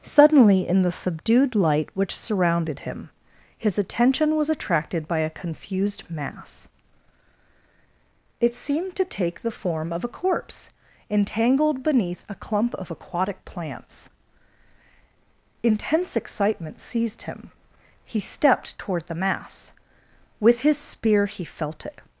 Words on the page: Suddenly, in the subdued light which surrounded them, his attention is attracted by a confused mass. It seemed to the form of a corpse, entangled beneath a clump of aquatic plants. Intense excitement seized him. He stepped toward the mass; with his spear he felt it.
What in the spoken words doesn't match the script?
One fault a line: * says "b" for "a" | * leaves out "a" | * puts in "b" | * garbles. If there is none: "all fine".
* says "him" for "them"
* says "was" for "is"
* puts in "take"